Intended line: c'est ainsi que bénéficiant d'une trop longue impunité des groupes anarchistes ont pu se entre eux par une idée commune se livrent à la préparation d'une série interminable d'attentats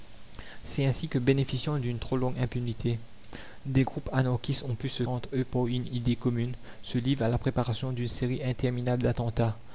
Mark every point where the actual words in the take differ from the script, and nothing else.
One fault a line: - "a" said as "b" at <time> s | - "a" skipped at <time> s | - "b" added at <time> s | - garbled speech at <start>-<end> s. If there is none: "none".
none